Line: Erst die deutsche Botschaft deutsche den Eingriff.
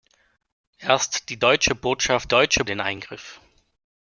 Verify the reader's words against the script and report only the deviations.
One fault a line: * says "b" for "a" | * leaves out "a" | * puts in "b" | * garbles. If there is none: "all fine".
all fine